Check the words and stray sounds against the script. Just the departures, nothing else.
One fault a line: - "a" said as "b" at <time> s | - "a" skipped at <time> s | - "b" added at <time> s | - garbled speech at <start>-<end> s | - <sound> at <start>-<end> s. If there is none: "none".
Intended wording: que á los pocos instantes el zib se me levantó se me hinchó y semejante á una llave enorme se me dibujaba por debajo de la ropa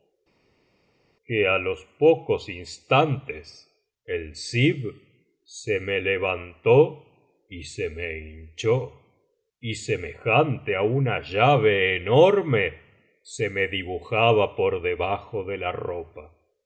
- "y" added at 7.5 s